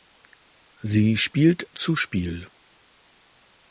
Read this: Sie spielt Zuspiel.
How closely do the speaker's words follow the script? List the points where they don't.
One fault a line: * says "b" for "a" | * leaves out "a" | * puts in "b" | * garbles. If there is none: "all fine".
all fine